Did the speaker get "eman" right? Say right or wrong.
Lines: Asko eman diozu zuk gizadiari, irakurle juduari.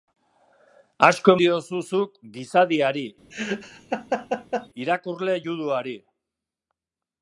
wrong